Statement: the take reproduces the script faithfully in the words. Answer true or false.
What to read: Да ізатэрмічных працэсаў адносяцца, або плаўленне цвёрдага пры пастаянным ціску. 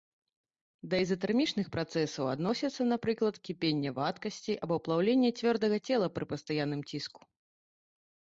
false